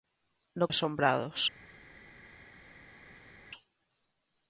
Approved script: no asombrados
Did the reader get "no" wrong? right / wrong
right